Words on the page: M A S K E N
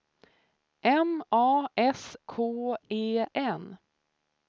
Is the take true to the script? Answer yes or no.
yes